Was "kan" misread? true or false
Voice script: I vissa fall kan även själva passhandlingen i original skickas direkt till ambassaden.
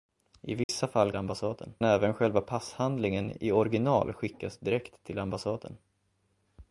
true